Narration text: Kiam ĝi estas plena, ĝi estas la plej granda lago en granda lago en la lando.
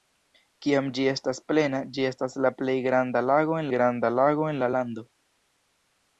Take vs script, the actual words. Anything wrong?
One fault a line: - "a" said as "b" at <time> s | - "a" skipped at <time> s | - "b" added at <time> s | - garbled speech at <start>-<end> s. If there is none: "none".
none